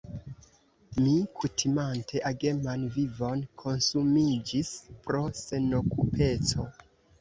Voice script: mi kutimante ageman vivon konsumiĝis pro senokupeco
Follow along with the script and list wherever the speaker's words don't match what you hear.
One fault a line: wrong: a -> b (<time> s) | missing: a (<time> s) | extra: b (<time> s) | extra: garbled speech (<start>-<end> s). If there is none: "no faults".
no faults